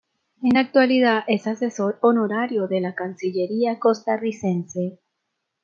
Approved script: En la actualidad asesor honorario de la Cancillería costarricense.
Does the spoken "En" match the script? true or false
true